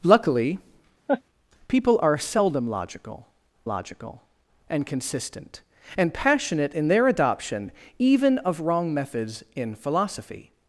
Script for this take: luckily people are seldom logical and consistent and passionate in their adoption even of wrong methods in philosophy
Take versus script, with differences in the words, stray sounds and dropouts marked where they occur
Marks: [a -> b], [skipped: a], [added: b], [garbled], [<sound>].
luckily [laugh] people are seldom logical [added: logical] and consistent and passionate in their adoption even of wrong methods in philosophy